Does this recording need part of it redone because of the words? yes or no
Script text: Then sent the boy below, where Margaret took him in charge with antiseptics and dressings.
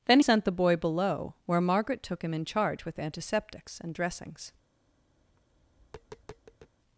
no